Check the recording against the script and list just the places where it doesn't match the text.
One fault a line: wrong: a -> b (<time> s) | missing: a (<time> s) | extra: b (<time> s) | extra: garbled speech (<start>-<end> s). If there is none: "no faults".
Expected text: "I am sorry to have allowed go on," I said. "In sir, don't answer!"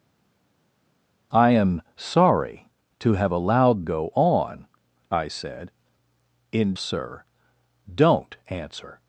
no faults